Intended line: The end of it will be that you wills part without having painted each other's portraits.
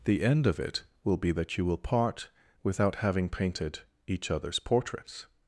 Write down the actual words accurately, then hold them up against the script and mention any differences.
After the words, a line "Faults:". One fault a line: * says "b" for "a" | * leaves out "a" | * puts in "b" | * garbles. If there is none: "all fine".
The end of it will be that you will part without having painted each other's portraits.
Faults:
* says "will" for "wills"